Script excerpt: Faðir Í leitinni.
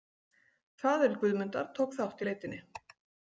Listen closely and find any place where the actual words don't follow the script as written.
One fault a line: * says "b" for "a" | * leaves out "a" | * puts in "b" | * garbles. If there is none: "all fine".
* puts in "Guðmundar tók þátt"